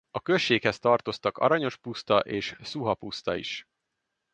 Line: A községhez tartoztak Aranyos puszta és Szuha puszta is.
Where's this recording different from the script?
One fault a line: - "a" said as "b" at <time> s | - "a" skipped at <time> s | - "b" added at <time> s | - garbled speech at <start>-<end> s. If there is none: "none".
none